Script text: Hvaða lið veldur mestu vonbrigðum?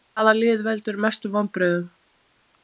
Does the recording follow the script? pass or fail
pass